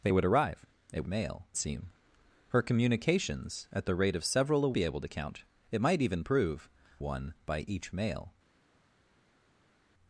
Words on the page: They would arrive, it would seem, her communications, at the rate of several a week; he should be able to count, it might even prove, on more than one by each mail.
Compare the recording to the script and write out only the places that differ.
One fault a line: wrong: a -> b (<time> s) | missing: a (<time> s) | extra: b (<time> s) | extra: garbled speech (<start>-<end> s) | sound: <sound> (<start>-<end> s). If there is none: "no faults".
wrong: would -> mail (1.0 s)
missing: week he should (4.7 s)
missing: on more than (6.7 s)